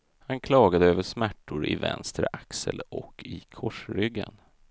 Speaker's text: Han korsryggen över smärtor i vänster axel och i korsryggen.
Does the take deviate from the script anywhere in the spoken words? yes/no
yes